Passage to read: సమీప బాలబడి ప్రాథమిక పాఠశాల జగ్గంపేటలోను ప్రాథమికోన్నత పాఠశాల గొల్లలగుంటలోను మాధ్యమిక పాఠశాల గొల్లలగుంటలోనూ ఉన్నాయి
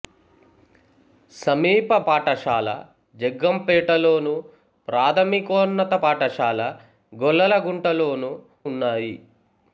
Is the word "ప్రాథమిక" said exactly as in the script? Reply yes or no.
no